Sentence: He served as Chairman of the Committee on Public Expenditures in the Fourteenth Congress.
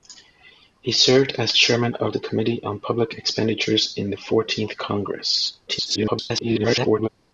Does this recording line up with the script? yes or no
no